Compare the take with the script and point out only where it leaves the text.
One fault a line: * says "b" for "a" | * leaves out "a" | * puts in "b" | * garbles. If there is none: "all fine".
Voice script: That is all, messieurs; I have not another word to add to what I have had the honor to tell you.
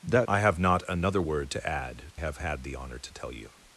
* leaves out "is all messieurs"
* leaves out "to what I"